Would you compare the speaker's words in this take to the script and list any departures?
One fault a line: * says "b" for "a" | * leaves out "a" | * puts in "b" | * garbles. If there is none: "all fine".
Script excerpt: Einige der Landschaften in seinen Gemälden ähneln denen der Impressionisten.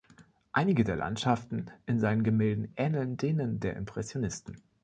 all fine